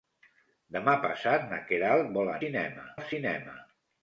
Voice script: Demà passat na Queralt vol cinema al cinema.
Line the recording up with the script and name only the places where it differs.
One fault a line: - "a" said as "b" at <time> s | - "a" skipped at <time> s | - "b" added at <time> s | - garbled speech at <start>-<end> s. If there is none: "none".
none